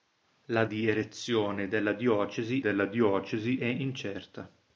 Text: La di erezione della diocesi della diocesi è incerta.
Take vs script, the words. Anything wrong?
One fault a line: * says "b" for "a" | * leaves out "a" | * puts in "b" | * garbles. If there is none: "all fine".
all fine